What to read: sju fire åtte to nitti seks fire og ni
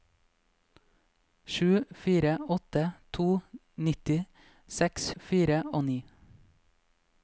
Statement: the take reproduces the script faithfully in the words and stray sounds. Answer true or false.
true